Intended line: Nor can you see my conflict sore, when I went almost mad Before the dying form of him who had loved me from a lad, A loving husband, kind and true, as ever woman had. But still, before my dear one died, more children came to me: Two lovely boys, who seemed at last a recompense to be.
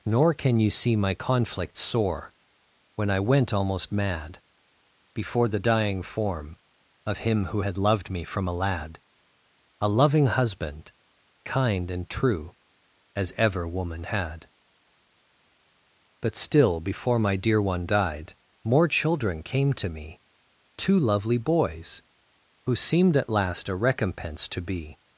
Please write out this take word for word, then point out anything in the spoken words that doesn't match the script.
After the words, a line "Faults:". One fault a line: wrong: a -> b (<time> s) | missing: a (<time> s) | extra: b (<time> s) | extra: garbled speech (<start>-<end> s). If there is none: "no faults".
Nor can you see my conflict sore, when I went almost mad Before the dying form of him who had loved me from a lad, A loving husband, kind and true, as ever woman had. But still, before my dear one died, more children came to me: Two lovely boys, who seemed at last a recompense to be.
Faults:
no faults